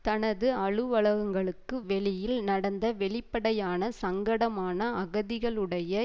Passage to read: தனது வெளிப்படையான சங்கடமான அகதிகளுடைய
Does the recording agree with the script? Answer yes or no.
no